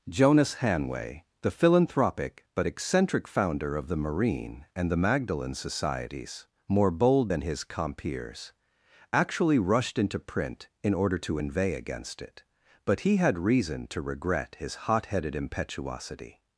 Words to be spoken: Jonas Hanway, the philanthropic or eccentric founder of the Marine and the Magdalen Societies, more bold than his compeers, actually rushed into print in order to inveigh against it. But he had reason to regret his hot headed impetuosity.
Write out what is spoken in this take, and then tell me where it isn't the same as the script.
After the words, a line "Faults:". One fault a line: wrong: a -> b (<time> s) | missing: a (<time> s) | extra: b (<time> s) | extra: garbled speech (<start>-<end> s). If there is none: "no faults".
Jonas Hanway, the philanthropic but eccentric founder of the Marine and the Magdalen Societies, more bold than his compeers, actually rushed into print in order to inveigh against it. But he had reason to regret his hot headed impetuosity.
Faults:
wrong: or -> but (2.5 s)